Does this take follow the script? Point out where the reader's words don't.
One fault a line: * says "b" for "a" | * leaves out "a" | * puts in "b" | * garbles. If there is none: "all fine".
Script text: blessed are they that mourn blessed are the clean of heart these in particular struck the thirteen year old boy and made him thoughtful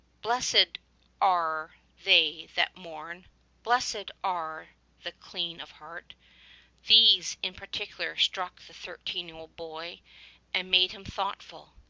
all fine